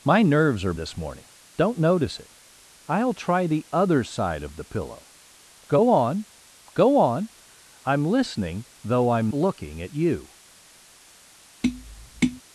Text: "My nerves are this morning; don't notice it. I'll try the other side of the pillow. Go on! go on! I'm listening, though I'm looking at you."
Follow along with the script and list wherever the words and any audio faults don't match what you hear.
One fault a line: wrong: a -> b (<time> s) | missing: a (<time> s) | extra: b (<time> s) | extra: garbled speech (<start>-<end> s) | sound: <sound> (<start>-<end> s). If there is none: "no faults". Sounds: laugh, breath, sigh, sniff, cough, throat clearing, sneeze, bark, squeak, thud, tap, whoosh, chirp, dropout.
sound: tap (11.6-12.4 s)